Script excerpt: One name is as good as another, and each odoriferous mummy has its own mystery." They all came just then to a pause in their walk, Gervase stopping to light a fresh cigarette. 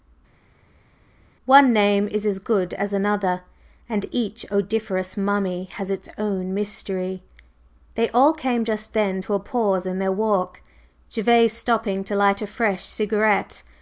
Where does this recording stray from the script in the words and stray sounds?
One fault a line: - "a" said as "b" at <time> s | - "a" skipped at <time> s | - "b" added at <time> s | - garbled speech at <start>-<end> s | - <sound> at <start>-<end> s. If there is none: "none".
none